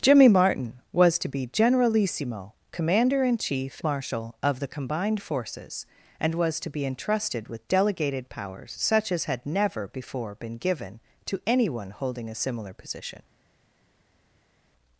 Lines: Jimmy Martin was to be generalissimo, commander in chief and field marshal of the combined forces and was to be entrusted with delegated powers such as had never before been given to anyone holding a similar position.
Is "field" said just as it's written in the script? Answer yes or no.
no